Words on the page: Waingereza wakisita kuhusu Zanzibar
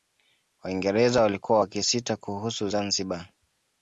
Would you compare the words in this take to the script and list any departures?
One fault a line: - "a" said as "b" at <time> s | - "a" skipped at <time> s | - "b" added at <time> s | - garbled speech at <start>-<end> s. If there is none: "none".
- "walikuwa" added at 1.2 s